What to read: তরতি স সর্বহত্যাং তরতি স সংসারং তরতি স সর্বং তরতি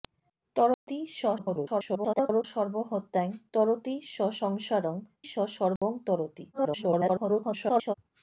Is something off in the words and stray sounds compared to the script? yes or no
yes